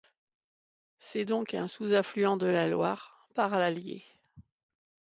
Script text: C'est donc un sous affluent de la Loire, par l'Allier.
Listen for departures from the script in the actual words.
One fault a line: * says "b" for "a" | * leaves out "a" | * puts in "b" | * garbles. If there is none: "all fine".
all fine